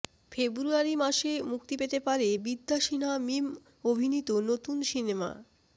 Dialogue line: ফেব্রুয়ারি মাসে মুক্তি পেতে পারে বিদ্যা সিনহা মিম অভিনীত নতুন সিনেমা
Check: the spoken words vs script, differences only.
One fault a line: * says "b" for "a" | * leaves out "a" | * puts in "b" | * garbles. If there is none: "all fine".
all fine